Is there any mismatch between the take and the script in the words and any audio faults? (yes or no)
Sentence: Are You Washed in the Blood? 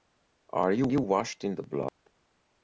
yes